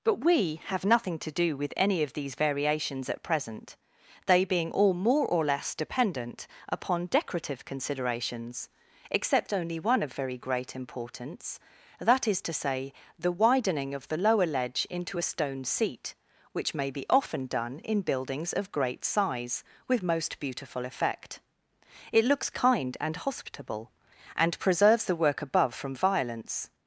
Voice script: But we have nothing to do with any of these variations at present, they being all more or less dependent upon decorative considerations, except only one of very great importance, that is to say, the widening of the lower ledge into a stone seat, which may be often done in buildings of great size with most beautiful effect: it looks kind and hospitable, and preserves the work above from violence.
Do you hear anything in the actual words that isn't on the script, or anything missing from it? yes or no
no